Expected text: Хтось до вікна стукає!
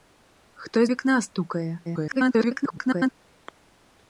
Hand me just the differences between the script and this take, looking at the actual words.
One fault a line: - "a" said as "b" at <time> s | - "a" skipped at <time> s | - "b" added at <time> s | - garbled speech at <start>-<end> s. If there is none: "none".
- "до" skipped at 0.9 s
- garbled speech at 1.8-3.1 s